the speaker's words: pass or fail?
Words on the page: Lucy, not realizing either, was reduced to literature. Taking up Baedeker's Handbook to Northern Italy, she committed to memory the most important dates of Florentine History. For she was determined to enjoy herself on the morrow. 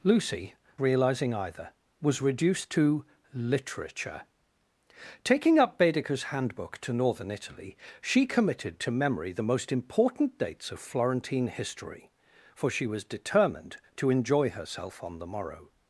fail